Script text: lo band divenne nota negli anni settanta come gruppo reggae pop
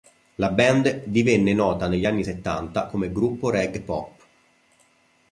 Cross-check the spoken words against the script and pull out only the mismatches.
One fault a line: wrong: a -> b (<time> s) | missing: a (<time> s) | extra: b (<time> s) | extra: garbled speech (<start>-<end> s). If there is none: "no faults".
wrong: lo -> la (0.4 s)